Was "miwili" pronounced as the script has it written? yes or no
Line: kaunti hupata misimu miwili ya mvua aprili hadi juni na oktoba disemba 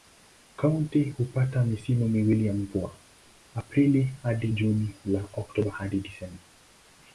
yes